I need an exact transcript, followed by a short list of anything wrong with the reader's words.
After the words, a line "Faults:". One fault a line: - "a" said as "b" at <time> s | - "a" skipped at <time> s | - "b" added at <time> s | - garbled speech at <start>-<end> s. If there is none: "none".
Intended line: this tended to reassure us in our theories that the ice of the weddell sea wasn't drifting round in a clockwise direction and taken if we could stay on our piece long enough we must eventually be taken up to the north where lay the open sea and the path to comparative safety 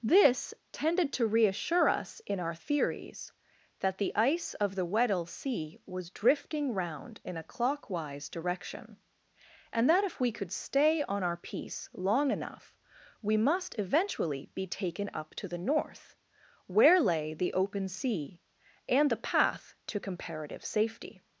this tended to reassure us in our theories that the ice of the weddell sea was drifting round in a clockwise direction and that if we could stay on our piece long enough we must eventually be taken up to the north where lay the open sea and the path to comparative safety
Faults:
- "wasn't" said as "was" at 5.8 s
- "taken" said as "that" at 9.9 s